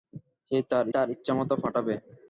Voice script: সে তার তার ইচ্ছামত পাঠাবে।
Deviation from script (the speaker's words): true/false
false